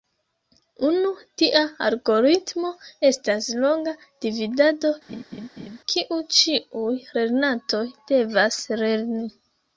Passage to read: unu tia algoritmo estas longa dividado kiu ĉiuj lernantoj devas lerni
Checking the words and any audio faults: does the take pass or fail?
fail